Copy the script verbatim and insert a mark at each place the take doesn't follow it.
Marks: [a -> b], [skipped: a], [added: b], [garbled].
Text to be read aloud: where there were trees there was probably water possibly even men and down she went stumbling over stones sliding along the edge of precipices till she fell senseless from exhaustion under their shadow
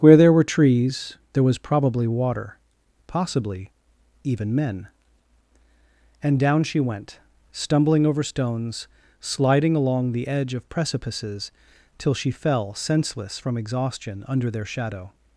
where there were trees there was probably water possibly even men and down she went stumbling over stones sliding along the edge of precipices till she fell senseless from exhaustion under their shadow